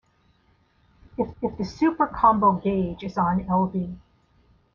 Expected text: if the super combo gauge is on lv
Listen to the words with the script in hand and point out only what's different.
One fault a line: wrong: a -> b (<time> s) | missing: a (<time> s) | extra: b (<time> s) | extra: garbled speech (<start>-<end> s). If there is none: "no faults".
extra: if (1.4 s)